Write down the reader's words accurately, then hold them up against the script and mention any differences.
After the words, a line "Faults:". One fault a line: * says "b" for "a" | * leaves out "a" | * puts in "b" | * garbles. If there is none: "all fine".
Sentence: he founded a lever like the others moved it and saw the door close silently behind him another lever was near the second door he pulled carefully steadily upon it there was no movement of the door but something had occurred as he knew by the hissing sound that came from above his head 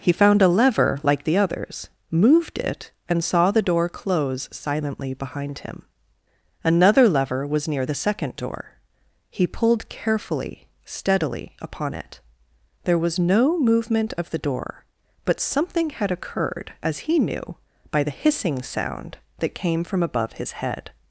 he found a lever like the others moved it and saw the door close silently behind him another lever was near the second door he pulled carefully steadily upon it there was no movement of the door but something had occurred as he knew by the hissing sound that came from above his head
Faults:
* says "found" for "founded"